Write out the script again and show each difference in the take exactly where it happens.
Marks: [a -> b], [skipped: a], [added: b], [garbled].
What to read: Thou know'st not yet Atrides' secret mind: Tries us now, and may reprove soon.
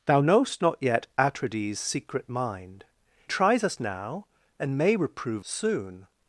Thou know'st not yet Atrides' secret mind: Tries us now, and may reprove soon.